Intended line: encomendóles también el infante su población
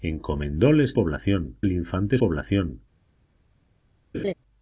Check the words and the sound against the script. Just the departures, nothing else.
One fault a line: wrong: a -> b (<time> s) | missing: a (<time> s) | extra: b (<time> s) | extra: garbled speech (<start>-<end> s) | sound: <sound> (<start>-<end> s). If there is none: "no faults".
wrong: también -> población (0.9 s)
missing: su (2.2 s)
sound: laugh (4.1-4.3 s)